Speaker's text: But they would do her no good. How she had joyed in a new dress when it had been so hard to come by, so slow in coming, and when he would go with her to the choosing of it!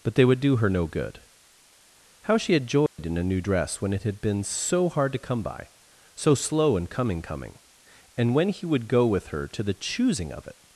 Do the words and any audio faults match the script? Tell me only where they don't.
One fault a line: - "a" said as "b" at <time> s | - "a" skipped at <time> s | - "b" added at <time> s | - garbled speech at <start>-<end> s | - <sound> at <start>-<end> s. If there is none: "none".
- dropout at 2.9-3.0 s
- "coming" added at 7.2 s